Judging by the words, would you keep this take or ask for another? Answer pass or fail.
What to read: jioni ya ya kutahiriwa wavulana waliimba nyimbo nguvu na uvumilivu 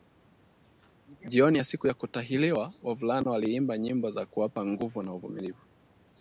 fail